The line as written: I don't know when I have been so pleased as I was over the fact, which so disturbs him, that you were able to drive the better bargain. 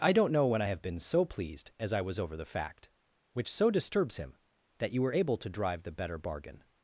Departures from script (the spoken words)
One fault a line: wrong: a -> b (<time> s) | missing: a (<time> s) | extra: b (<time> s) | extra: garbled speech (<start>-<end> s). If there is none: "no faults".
no faults